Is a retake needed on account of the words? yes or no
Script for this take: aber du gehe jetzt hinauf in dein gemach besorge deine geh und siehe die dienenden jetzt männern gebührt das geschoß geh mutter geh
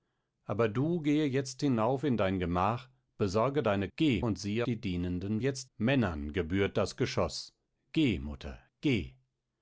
no